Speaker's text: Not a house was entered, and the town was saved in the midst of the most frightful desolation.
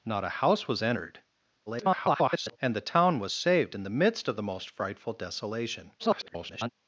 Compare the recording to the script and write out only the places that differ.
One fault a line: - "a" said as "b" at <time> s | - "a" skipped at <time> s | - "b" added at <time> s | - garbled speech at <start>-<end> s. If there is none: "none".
- garbled speech at 1.7-2.6 s
- garbled speech at 6.0-6.7 s